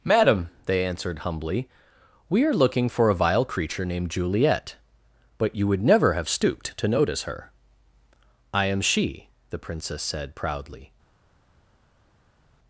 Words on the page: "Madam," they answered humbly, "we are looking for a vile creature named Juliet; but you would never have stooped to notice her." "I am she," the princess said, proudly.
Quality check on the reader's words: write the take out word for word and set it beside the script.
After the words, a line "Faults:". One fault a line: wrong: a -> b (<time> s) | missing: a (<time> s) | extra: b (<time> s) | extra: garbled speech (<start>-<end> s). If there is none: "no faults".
"Madam," they answered humbly, "we are looking for a vile creature named Juliet; but you would never have stooped to notice her." "I am she," the princess said, proudly.
Faults:
no faults